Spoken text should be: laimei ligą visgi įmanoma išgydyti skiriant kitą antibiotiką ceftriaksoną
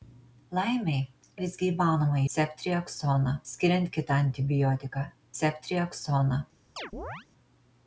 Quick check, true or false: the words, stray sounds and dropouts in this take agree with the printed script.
false